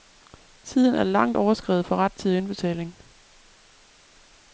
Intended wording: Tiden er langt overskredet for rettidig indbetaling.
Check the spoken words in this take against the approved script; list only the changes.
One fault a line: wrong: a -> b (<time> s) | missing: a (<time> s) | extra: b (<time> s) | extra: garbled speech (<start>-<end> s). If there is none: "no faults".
no faults